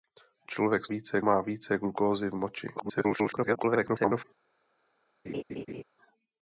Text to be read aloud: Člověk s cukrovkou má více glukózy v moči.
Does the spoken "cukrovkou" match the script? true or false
false